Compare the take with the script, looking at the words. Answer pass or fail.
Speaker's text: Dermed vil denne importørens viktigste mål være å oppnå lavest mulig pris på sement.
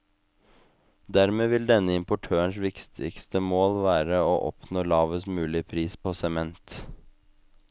pass